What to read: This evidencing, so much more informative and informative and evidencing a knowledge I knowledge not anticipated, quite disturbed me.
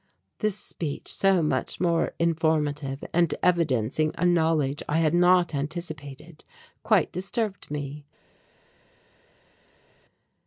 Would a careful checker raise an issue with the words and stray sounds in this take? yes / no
yes